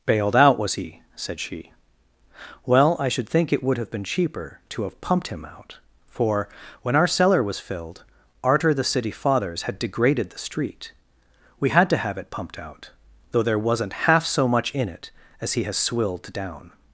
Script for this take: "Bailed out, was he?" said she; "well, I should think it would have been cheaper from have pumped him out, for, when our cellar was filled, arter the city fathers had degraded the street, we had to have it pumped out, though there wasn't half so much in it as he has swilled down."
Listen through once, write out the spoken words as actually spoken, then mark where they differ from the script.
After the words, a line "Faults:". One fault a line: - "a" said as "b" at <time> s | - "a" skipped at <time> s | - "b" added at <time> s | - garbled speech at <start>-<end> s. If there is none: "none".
"Bailed out, was he?" said she; "well, I should think it would have been cheaper to have pumped him out, for, when our cellar was filled, arter the city fathers had degraded the street, we had to have it pumped out, though there wasn't half so much in it as he has swilled down."
Faults:
- "from" said as "to" at 4.7 s